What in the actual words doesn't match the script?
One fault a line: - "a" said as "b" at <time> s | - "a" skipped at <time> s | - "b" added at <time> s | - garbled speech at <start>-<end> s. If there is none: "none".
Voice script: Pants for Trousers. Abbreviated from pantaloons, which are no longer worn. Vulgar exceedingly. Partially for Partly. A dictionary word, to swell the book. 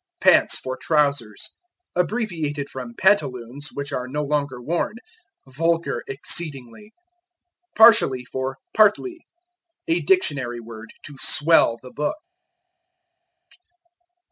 none